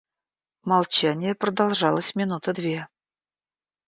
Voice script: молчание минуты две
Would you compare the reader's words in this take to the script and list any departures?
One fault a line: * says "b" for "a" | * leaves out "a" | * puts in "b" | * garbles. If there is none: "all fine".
* puts in "продолжалось"